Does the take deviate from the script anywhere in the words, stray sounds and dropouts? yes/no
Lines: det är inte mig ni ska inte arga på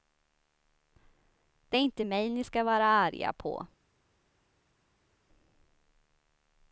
yes